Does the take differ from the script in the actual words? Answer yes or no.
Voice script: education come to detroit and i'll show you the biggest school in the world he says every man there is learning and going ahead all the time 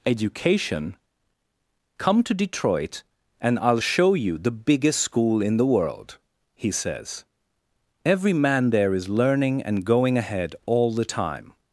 no